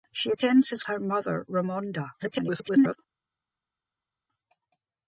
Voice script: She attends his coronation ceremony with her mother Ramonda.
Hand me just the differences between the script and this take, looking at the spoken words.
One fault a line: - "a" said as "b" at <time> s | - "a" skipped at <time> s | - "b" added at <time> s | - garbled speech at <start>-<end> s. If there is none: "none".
- "coronation ceremony with" skipped at 0.8 s
- garbled speech at 2.2-3.0 s